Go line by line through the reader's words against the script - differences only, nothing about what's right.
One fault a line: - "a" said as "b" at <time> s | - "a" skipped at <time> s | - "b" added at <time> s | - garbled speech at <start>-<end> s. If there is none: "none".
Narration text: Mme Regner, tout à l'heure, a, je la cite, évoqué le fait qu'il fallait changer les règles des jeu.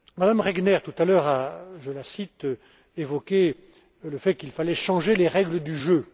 - "des" said as "du" at 5.6 s